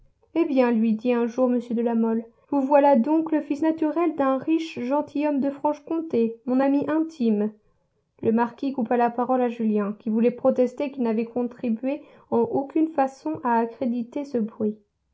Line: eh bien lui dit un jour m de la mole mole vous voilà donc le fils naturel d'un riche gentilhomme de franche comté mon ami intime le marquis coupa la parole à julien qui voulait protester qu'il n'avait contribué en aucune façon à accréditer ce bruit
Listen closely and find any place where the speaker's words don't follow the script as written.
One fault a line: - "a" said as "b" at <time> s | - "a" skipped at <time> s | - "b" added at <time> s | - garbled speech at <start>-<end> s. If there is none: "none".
- "mole" skipped at 2.2 s